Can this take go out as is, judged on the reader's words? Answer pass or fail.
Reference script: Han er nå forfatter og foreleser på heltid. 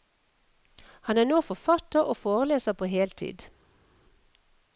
pass